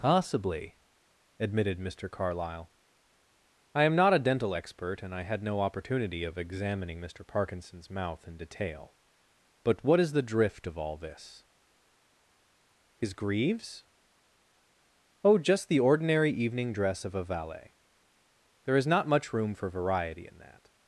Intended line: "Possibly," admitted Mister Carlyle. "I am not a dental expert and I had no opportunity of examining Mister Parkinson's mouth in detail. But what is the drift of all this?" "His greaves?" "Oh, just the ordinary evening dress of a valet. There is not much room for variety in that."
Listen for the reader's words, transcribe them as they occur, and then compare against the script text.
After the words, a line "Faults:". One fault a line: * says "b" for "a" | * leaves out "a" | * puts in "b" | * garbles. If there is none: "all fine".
"Possibly," admitted Mister Carlyle. "I am not a dental expert and I had no opportunity of examining Mister Parkinson's mouth in detail. But what is the drift of all this?" "His greaves?" "Oh, just the ordinary evening dress of a valet. There is not much room for variety in that."
Faults:
all fine